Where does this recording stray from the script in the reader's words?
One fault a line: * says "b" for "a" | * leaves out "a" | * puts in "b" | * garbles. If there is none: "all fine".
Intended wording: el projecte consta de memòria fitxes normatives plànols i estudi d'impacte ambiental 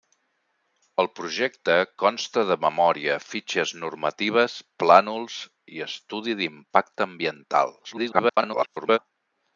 * garbles